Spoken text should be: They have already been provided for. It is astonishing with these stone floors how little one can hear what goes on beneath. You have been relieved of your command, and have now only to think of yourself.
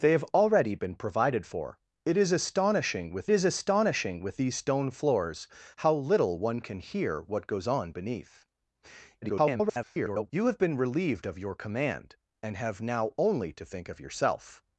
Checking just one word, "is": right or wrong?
right